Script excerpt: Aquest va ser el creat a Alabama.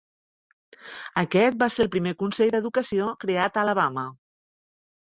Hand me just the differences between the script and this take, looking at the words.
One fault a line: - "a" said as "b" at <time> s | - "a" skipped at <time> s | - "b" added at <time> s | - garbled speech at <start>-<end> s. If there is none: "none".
- "primer consell d"educació" added at 2.0 s